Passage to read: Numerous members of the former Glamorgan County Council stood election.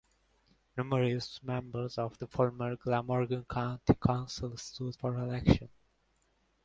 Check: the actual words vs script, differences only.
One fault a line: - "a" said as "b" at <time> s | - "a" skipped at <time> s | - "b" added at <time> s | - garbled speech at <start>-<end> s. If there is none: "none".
- "for" added at 4.9 s